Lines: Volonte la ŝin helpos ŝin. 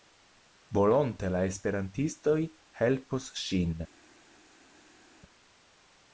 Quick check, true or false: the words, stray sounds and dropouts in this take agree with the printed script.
false